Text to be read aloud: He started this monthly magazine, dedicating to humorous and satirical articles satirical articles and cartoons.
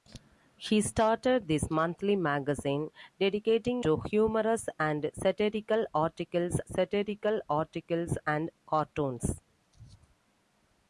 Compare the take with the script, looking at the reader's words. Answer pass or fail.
pass